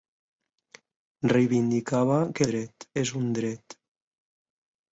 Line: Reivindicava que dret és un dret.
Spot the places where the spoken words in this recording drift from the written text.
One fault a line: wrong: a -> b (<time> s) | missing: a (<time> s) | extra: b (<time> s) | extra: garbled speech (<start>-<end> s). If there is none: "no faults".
no faults